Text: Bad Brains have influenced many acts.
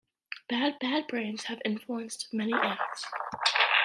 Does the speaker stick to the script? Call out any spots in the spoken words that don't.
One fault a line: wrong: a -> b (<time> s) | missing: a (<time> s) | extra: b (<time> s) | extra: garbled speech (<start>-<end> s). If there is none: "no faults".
extra: bad (0.8 s)